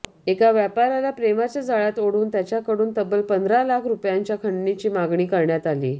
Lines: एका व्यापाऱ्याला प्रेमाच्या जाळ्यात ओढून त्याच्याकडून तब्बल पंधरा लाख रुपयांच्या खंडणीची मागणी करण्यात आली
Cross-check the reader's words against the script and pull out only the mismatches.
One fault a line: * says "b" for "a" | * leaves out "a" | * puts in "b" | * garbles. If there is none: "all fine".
all fine